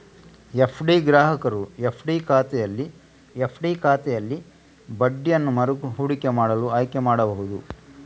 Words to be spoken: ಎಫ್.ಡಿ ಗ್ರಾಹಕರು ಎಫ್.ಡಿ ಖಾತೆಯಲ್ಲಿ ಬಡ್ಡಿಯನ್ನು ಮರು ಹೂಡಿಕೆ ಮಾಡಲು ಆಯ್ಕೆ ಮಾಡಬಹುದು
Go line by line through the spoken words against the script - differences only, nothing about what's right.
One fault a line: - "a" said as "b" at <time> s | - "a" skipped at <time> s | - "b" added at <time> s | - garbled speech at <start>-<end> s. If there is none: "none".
- "ಎಫ್.ಡಿ ಖಾತೆಯಲ್ಲಿ" added at 3.4 s